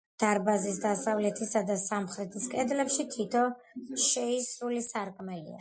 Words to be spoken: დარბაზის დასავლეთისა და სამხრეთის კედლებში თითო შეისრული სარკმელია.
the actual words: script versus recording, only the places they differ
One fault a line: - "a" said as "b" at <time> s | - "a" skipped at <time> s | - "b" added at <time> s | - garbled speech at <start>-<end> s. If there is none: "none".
none